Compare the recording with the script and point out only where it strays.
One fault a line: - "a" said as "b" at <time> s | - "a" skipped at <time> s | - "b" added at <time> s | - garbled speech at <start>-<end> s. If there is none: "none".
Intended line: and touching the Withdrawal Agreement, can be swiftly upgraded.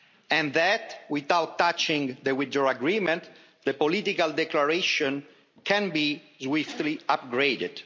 - "that without" added at 0.5 s
- "the political declaration" added at 3.6 s